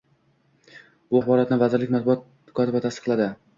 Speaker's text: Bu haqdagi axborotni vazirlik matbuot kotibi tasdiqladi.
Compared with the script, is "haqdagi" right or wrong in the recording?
wrong